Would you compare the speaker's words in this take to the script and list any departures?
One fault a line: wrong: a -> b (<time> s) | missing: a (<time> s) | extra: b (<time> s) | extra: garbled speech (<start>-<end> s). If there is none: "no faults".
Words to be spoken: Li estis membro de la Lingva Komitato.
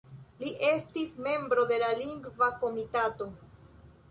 no faults